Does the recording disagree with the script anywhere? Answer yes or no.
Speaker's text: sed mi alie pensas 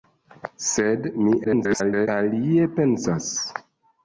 yes